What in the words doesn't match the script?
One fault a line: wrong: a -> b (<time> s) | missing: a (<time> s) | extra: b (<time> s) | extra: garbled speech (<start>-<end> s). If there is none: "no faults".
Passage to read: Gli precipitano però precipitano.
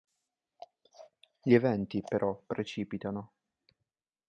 wrong: precipitano -> eventi (1.5 s)